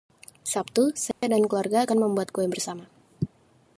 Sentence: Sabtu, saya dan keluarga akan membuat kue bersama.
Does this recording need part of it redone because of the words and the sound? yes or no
yes